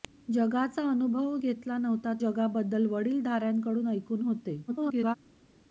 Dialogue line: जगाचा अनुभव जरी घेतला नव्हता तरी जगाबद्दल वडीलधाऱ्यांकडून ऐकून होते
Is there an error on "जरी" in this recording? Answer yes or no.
yes